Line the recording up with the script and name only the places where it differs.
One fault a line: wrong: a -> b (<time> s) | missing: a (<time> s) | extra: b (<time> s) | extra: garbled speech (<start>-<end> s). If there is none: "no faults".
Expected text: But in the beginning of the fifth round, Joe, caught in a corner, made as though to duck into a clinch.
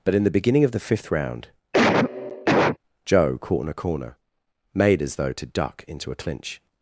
no faults